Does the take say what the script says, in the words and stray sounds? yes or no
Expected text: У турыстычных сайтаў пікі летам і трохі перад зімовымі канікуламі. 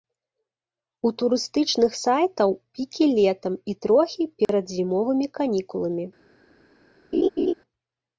no